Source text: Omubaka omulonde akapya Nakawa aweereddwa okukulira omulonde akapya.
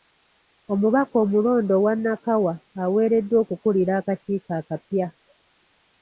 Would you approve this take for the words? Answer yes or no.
no